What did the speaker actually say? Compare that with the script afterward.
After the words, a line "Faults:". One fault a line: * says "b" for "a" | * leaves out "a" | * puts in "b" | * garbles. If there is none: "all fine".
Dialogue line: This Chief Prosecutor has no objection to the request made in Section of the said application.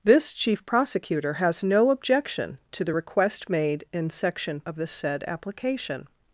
This Chief Prosecutor has no objection to the request made in Section of the said application.
Faults:
all fine